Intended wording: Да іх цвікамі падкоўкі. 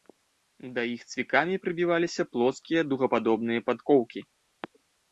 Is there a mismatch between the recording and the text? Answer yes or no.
yes